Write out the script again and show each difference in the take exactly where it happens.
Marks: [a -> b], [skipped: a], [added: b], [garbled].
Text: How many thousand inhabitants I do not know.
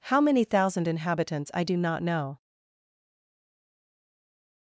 How many thousand inhabitants I do not know.